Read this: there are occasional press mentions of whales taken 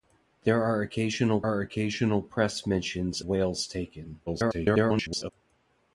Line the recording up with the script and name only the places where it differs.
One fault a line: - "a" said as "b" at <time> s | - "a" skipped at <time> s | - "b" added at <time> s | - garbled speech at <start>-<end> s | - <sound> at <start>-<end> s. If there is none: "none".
- "are occasional" added at 1.4 s
- "of" skipped at 3.2 s
- garbled speech at 4.3-5.3 s